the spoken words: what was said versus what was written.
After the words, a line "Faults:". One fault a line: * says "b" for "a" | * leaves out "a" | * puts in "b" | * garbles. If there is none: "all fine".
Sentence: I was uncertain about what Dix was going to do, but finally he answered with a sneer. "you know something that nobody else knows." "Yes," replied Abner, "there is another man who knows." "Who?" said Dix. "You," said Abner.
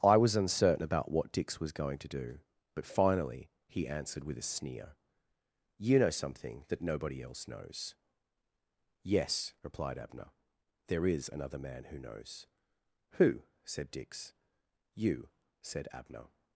I was uncertain about what Dix was going to do, but finally he answered with a sneer. "you know something that nobody else knows." "Yes," replied Abner, "there is another man who knows." "Who?" said Dix. "You," said Abner.
Faults:
all fine